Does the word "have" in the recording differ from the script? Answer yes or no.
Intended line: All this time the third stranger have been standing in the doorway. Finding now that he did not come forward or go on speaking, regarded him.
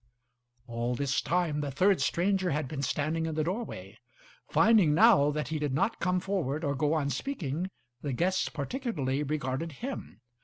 yes